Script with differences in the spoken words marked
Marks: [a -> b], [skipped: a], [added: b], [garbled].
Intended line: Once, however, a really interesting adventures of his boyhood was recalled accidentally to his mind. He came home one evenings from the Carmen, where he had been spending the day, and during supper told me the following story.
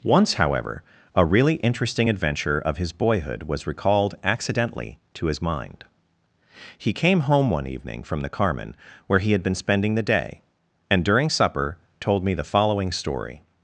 Once, however, a really interesting [adventures -> adventure] of his boyhood was recalled accidentally to his mind. He came home one [evenings -> evening] from the Carmen, where he had been spending the day, and during supper told me the following story.